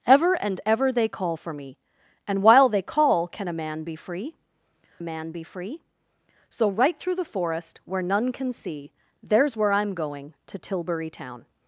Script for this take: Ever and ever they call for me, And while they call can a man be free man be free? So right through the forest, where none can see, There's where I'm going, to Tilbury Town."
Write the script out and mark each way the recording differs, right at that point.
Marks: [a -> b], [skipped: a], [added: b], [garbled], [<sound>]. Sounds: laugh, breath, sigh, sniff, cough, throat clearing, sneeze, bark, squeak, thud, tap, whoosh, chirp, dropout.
Ever and ever they call for me, And while they call can a man be free man be free? So right through the forest, where none can see, There's where I'm going, to Tilbury Town."